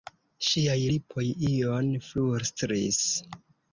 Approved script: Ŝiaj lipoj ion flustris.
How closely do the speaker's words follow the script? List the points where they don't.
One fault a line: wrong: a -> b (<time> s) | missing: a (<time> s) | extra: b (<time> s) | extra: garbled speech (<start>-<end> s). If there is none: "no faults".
no faults